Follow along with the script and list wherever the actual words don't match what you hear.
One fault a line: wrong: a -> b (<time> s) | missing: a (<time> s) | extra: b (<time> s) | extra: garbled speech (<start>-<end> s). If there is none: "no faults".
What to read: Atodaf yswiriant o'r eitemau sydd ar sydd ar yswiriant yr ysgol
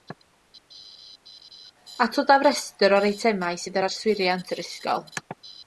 wrong: yswiriant -> restr (2.5 s)
missing: sydd ar (3.9 s)